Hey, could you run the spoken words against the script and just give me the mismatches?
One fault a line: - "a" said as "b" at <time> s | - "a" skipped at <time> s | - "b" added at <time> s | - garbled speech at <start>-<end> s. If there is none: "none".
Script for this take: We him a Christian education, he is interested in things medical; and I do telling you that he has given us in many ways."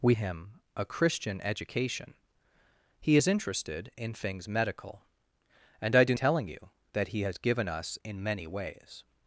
none